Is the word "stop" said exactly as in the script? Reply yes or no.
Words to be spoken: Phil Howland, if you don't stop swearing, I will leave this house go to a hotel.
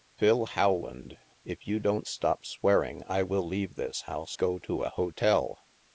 yes